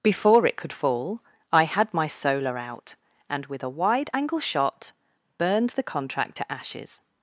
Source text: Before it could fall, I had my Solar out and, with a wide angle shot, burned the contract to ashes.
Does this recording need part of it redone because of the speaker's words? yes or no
no